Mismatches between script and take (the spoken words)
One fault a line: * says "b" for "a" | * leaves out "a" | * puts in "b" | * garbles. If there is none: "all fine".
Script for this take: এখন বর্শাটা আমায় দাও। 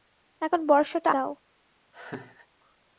* leaves out "আমায়"